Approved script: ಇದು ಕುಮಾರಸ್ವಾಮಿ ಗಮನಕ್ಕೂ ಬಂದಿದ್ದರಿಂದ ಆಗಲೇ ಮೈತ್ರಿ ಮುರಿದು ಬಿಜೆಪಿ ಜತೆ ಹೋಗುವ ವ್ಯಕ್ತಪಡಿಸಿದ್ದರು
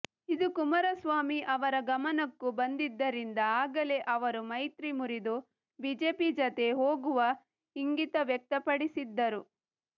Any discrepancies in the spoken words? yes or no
yes